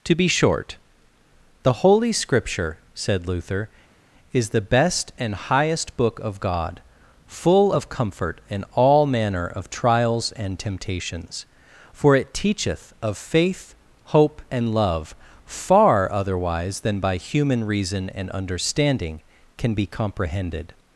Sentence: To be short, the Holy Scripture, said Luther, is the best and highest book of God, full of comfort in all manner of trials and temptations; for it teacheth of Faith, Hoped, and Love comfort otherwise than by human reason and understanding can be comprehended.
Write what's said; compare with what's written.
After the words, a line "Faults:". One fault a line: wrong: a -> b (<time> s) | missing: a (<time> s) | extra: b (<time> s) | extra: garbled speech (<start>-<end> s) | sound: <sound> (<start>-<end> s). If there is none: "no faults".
To be short, the Holy Scripture, said Luther, is the best and highest book of God, full of comfort in all manner of trials and temptations; for it teacheth of Faith, Hope, and Love far otherwise than by human reason and understanding can be comprehended.
Faults:
wrong: Hoped -> Hope (14.2 s)
wrong: comfort -> far (15.4 s)